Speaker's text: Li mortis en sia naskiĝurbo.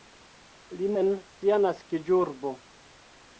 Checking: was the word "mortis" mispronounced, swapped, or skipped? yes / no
yes